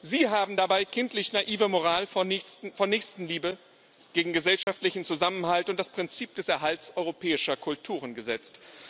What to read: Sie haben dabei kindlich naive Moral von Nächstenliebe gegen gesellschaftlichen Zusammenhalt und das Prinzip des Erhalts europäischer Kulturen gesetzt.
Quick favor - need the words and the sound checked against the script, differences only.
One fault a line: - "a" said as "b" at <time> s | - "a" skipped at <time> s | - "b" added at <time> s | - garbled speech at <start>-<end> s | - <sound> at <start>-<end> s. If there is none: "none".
- dropout at 4.6-4.7 s